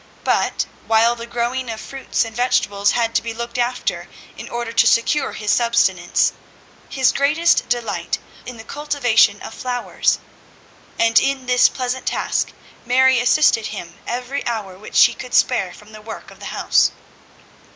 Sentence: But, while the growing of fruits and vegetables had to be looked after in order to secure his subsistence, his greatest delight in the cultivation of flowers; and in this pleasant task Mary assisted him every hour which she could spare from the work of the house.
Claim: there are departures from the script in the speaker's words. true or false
false